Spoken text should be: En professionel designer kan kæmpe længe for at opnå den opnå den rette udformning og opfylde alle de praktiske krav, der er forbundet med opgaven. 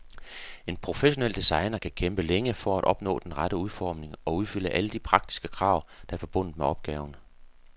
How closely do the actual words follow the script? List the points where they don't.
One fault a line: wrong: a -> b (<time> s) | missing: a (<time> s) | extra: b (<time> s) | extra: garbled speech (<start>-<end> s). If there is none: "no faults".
missing: opnå den (3.4 s)